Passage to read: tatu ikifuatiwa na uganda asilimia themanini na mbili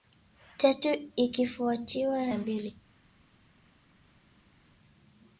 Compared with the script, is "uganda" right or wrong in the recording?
wrong